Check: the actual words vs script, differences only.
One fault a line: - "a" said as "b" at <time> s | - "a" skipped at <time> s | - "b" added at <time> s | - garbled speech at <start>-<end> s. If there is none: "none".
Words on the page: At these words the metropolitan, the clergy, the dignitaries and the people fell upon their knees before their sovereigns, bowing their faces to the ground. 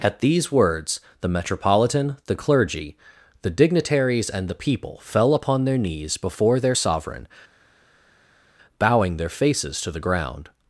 - "sovereigns" said as "sovereign" at 6.7 s